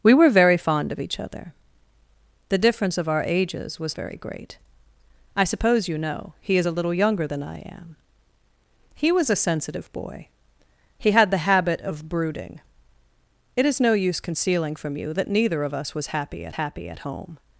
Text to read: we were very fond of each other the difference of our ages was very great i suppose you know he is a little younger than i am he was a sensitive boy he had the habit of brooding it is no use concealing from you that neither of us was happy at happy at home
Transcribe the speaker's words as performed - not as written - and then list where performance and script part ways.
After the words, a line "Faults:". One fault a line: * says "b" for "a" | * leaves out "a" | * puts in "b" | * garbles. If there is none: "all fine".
we were very fond of each other the difference of our ages was very great i suppose you know he is a little younger than i am he was a sensitive boy he had the habit of brooding it is no use concealing from you that neither of us was happy at happy at home
Faults:
all fine